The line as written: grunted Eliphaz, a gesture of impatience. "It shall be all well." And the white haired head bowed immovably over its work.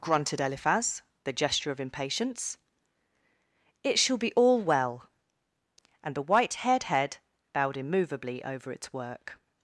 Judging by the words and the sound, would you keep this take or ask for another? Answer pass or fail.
pass